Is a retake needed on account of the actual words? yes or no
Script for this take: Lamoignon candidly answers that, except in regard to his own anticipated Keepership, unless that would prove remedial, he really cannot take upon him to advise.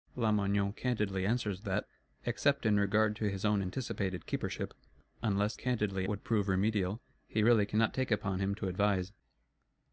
yes